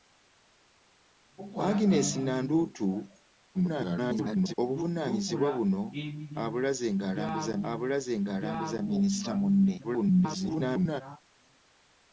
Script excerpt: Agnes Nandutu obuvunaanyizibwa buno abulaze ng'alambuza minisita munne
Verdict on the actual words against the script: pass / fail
fail